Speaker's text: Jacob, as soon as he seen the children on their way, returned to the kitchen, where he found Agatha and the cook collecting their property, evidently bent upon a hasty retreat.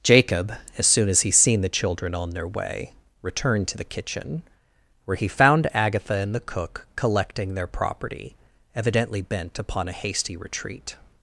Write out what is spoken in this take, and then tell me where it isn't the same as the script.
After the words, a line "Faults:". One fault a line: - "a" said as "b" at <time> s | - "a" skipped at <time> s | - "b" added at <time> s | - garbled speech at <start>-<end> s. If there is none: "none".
Jacob, as soon as he seen the children on their way, returned to the kitchen, where he found Agatha and the cook collecting their property, evidently bent upon a hasty retreat.
Faults:
none